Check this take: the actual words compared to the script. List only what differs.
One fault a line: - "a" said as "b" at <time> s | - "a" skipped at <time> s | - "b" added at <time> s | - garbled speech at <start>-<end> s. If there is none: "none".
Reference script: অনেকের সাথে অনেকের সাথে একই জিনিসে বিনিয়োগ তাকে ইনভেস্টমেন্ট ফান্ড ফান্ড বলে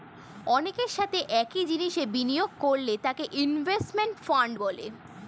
- "অনেকের সাথে" skipped at 1.2 s
- "করলে" added at 2.6 s
- "ফান্ড" skipped at 4.5 s